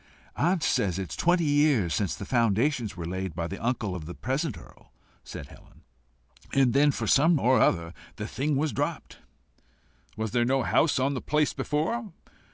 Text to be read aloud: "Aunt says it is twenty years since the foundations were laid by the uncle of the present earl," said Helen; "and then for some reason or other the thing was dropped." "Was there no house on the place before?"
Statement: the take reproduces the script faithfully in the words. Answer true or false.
false